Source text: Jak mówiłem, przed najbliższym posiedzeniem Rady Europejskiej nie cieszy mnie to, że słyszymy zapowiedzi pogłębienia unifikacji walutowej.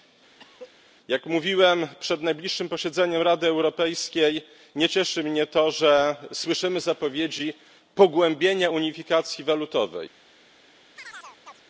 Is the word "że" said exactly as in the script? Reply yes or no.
yes